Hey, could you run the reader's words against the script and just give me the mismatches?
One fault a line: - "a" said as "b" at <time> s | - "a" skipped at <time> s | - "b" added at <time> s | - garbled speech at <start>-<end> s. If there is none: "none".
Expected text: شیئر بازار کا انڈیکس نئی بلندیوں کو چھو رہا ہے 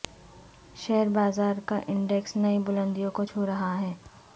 none